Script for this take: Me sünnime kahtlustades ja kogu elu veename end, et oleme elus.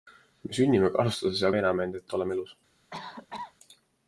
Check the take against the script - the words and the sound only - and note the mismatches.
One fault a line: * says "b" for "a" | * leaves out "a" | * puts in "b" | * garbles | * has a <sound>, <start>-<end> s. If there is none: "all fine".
* leaves out "kogu elu"
* has a cough, 2.9-3.5 s